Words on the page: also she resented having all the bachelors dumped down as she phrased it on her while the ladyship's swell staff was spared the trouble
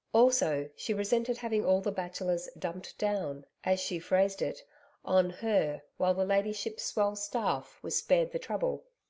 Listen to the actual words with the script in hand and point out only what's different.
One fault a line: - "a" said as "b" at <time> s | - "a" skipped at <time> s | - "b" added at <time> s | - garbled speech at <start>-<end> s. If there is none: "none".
none